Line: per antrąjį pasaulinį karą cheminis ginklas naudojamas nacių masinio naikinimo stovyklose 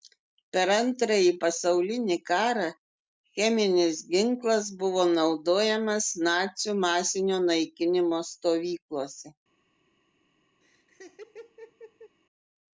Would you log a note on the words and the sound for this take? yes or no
yes